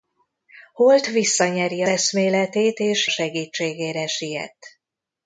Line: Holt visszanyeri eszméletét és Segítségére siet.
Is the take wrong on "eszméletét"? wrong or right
right